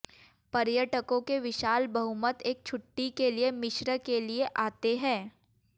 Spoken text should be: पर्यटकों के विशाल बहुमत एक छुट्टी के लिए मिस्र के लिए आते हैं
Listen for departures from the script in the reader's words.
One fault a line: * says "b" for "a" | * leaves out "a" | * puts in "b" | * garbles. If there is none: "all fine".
all fine